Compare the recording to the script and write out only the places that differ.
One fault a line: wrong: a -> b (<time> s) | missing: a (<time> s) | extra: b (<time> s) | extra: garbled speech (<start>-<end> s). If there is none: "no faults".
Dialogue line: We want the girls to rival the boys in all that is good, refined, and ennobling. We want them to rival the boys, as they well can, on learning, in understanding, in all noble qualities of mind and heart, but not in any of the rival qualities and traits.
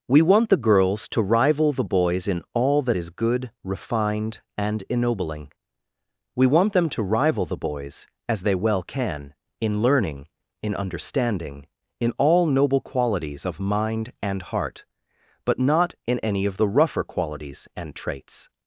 wrong: on -> in (9.6 s)
wrong: rival -> rougher (16.7 s)